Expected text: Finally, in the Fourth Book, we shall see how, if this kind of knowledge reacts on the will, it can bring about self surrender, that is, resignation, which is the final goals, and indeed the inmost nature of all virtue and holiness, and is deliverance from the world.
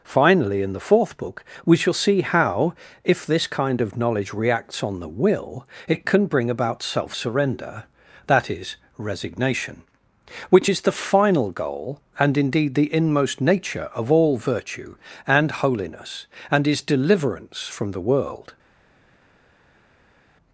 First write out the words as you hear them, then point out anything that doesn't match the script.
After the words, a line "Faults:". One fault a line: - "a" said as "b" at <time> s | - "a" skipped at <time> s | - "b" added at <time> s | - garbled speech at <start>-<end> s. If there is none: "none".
Finally, in the Fourth Book, we shall see how, if this kind of knowledge reacts on the will, it can bring about self surrender, that is, resignation, which is the final goal, and indeed the inmost nature of all virtue and holiness, and is deliverance from the world.
Faults:
- "goals" said as "goal" at 11.5 s